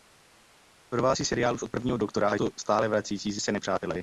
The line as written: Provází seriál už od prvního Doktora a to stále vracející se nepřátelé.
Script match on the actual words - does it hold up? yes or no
yes